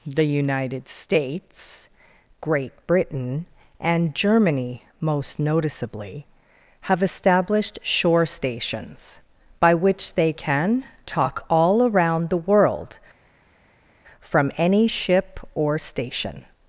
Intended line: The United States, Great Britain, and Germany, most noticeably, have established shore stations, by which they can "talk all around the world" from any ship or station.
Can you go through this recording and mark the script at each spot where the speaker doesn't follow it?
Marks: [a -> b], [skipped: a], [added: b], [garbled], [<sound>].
The United States, Great Britain, and Germany, most noticeably, have established shore stations, by which they can "talk all around the world" from any ship or station.